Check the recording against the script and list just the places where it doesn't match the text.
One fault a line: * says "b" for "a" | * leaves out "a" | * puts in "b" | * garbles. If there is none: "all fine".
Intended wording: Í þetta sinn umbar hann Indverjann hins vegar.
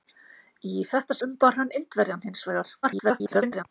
* leaves out "sinn"
* garbles